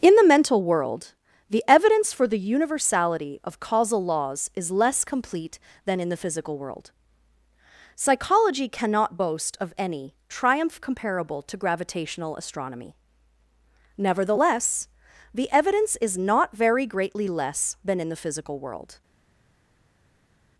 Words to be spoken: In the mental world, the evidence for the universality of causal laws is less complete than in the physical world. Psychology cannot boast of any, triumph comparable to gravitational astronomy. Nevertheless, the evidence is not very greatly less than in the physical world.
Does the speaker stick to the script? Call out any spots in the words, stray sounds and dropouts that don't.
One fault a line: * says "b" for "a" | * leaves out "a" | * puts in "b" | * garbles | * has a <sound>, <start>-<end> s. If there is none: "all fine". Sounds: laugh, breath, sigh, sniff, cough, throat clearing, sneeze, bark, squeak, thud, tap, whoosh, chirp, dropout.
all fine